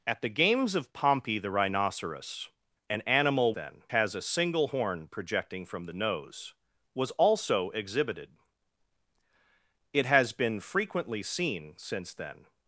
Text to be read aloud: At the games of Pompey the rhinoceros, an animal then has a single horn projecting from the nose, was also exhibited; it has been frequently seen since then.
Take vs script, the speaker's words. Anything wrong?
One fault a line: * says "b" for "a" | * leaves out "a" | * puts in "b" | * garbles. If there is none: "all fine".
all fine